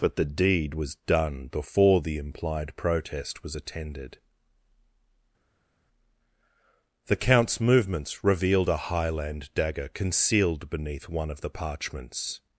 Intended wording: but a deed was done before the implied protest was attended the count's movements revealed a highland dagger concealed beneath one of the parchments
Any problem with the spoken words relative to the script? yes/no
yes